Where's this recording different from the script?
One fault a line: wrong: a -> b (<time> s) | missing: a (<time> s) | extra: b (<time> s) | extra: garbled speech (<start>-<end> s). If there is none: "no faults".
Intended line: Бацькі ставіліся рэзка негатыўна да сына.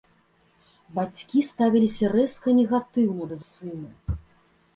no faults